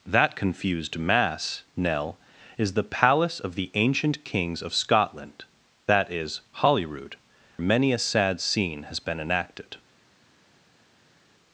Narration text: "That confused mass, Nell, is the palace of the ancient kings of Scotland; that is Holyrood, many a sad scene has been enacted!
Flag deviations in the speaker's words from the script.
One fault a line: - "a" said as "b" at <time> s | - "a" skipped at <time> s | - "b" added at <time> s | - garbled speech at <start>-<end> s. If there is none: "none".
none